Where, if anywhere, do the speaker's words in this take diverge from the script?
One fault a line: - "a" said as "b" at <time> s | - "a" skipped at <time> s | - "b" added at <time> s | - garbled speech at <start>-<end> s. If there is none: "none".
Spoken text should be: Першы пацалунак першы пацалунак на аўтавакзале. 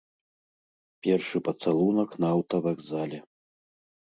- "першы пацалунак" skipped at 2.1 s